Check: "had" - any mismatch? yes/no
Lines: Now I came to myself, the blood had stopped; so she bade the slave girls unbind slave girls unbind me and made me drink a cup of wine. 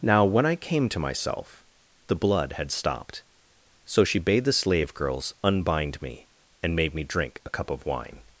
no